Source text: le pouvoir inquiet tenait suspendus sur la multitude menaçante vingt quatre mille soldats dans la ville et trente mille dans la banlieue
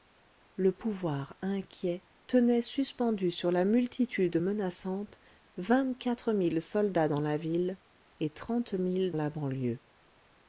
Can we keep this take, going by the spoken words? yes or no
no